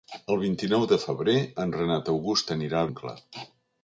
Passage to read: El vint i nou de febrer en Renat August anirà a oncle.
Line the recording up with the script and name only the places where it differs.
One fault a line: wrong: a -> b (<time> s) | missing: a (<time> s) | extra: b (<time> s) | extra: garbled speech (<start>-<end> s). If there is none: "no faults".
no faults